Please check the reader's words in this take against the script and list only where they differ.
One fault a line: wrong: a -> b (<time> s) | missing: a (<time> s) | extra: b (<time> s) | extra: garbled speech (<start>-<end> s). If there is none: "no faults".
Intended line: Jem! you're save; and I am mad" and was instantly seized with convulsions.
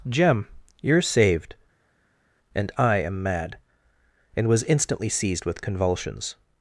wrong: save -> saved (1.0 s)